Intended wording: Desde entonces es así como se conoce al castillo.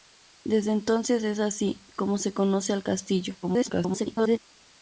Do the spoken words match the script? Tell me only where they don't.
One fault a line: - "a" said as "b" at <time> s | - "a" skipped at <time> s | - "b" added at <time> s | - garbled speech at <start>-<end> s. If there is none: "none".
- garbled speech at 3.4-4.4 s